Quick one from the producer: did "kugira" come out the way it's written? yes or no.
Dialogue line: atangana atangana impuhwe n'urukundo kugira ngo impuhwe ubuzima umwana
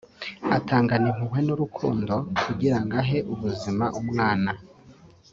yes